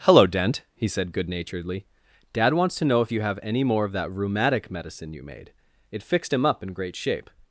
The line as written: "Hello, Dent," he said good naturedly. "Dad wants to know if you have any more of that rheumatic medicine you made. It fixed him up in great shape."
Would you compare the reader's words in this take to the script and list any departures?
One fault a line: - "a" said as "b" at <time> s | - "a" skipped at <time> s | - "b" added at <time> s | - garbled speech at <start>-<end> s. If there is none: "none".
none